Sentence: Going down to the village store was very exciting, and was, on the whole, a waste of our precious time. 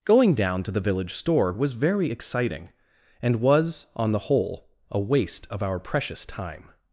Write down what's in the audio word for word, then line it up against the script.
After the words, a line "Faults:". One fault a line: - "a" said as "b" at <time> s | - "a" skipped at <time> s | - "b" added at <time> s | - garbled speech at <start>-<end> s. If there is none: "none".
Going down to the village store was very exciting, and was, on the whole, a waste of our precious time.
Faults:
none